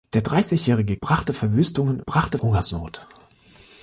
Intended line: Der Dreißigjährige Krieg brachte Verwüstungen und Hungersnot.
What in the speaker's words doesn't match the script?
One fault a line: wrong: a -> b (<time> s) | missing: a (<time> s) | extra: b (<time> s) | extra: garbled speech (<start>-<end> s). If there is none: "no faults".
missing: Krieg (1.0 s)
wrong: und -> brachte (2.1 s)